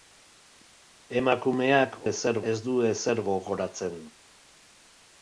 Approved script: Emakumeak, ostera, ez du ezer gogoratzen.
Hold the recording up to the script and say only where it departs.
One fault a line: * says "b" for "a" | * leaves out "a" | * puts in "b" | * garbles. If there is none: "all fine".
* says "ezer" for "ostera"